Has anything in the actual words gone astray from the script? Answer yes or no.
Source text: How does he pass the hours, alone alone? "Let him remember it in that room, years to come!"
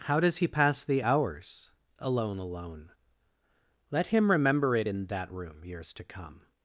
no